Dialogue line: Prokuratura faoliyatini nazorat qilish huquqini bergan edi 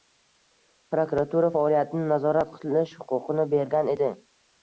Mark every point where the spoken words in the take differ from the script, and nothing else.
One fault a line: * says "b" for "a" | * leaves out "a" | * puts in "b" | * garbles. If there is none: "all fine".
all fine